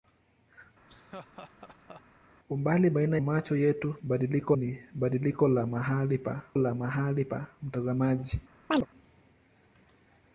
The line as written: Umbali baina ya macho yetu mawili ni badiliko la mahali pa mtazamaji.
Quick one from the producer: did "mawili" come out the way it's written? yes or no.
no